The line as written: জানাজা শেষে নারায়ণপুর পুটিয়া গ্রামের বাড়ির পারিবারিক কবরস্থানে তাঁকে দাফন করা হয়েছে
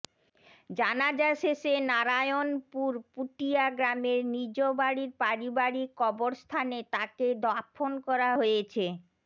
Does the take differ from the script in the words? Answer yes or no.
yes